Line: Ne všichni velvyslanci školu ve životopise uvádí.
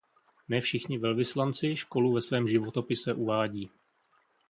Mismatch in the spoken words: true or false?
true